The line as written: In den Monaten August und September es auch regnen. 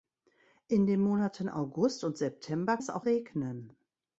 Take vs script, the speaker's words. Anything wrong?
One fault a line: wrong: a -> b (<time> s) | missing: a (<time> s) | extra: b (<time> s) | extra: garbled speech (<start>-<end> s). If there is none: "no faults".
no faults